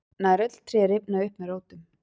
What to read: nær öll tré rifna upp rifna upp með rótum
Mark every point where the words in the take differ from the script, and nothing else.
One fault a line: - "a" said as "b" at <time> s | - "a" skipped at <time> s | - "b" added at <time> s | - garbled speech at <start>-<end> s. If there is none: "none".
- "rifna upp" skipped at 1.4 s